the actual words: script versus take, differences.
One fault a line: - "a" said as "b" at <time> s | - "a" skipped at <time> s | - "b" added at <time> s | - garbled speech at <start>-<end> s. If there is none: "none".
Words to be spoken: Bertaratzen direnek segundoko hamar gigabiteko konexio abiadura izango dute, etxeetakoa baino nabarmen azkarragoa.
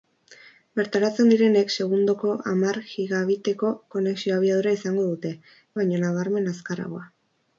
- "etxeetakoa" skipped at 5.3 s